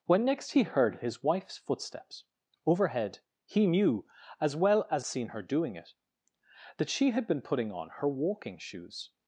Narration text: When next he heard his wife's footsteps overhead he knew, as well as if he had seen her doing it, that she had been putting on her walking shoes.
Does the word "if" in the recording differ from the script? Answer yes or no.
yes